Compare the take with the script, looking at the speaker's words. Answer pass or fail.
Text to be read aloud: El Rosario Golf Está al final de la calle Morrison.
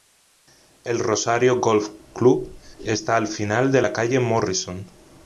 fail